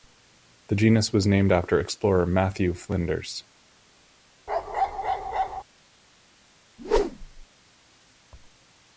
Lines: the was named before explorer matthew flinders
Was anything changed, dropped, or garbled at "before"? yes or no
yes